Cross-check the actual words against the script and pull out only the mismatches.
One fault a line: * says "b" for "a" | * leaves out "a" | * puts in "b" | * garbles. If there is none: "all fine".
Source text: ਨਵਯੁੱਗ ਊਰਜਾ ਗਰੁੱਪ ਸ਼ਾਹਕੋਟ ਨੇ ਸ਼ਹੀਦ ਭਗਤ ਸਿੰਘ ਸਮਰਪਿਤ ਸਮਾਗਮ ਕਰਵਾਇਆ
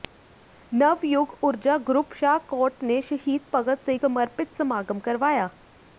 all fine